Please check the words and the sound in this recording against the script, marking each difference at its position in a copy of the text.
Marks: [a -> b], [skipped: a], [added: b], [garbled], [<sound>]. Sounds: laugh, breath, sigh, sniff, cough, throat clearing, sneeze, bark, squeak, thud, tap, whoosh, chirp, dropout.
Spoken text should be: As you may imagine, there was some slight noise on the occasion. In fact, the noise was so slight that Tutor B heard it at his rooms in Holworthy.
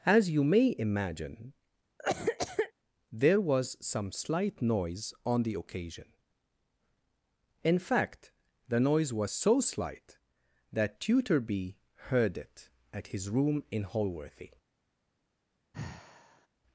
As you may imagine, [cough] there was some slight noise on the occasion. In fact, the noise was so slight that Tutor B heard it at his [rooms -> room] in Holworthy. [sigh]